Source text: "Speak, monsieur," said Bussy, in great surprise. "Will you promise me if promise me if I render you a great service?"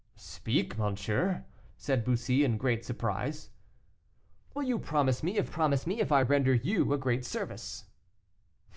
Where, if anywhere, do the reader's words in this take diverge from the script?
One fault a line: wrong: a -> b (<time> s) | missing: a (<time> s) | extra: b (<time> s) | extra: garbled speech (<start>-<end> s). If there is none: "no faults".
no faults